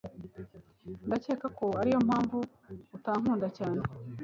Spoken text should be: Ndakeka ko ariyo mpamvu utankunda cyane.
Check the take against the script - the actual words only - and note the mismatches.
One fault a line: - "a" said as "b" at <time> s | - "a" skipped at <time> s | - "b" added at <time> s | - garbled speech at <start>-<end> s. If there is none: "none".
none